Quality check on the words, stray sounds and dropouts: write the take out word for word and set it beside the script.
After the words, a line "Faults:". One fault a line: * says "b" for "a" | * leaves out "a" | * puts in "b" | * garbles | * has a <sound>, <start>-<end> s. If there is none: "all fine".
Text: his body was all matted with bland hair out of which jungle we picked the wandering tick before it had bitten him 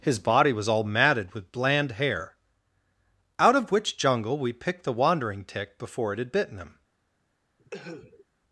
his body was all matted with bland hair out of which jungle we picked the wandering tick before it had bitten him
Faults:
* has a cough, 7.6-8.3 s